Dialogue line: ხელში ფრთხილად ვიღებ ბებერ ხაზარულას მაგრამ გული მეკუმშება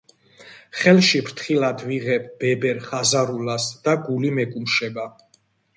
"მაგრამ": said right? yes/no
no